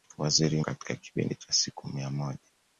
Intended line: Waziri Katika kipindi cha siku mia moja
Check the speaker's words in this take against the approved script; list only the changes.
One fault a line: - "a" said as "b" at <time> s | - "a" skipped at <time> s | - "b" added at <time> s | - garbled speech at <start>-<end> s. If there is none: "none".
none